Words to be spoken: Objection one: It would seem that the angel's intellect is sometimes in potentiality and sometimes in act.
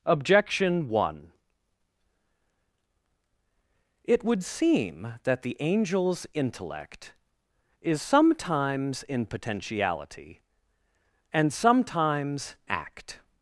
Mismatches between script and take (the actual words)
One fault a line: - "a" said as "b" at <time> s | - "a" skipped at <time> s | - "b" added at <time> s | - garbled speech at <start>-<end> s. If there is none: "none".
- "in" skipped at 12.5 s